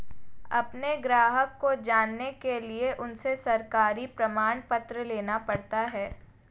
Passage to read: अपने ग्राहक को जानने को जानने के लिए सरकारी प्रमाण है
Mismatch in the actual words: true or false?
true